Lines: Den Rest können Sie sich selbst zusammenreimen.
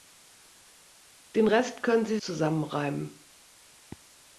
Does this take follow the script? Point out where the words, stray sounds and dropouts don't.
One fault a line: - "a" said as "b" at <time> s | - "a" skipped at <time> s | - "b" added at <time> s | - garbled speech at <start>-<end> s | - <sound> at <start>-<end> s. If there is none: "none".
- "sich selbst" skipped at 2.2 s